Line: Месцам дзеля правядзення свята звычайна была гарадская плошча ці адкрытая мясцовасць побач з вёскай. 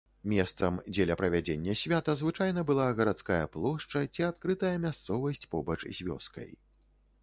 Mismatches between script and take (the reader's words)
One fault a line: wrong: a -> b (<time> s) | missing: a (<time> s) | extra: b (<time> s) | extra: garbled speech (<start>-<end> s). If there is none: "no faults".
no faults